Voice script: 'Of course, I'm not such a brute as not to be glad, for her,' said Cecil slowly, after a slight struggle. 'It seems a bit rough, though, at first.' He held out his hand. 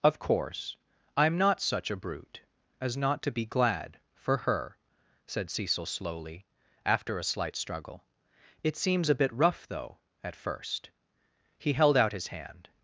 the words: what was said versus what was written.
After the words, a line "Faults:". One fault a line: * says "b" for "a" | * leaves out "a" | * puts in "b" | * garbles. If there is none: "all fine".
'Of course, I'm not such a brute as not to be glad, for her,' said Cecil slowly, after a slight struggle. 'It seems a bit rough, though, at first.' He held out his hand.
Faults:
all fine